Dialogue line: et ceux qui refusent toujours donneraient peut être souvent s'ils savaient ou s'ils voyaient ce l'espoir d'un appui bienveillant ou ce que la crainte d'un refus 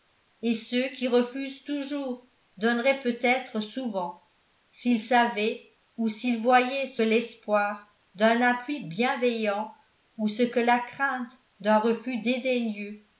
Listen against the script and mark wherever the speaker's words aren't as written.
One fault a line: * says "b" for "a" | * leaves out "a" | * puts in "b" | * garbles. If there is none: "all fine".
all fine